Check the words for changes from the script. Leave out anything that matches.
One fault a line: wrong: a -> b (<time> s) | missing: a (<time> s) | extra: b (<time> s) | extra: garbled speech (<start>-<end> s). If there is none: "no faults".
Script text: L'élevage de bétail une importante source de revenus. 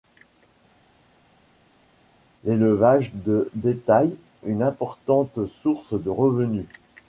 no faults